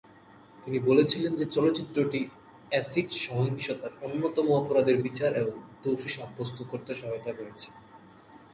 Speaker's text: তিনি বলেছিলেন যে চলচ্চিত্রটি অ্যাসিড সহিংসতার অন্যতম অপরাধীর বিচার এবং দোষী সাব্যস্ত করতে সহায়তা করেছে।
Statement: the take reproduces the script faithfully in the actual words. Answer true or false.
true